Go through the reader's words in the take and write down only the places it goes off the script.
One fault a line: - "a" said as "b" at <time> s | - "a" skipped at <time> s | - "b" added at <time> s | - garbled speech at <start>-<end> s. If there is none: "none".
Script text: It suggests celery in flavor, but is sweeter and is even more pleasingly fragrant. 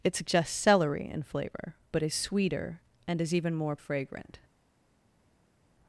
- "pleasingly" skipped at 3.8 s